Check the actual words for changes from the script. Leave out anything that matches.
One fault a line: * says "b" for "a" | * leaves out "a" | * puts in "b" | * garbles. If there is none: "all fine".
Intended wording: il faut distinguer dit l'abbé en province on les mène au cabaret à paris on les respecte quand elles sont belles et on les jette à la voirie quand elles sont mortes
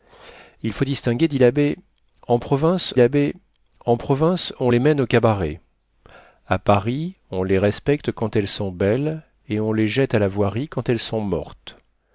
* puts in "l'abbé en province"